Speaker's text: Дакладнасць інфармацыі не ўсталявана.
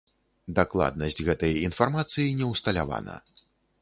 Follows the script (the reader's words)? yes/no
no